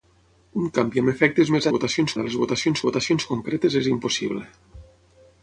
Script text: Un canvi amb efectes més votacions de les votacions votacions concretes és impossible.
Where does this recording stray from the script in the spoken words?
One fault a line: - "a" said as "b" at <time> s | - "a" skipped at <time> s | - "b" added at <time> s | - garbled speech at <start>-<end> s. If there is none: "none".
none